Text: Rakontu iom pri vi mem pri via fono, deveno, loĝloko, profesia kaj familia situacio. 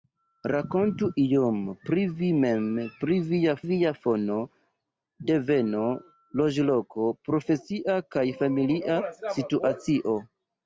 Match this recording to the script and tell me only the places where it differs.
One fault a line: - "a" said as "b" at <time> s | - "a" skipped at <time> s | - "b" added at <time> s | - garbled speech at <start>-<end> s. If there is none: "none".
- "via" added at 3.7 s